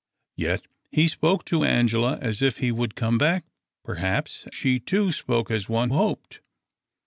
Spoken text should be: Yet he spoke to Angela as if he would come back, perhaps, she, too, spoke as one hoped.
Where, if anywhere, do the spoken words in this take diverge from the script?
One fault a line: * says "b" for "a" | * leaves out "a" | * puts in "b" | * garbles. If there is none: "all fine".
all fine